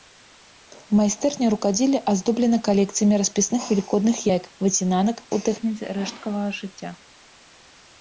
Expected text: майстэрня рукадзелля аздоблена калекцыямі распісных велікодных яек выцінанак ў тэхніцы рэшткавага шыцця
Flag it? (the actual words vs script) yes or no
no